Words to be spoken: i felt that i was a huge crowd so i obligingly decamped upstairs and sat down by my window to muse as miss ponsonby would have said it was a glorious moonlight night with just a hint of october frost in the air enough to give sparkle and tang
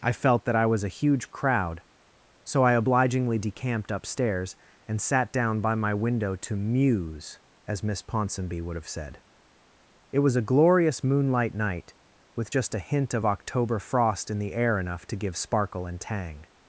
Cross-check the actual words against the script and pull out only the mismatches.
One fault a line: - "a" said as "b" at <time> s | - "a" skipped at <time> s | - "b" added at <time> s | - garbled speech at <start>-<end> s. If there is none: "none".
none